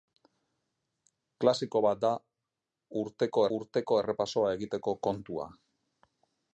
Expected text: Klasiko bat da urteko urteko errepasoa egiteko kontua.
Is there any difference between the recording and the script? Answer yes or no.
no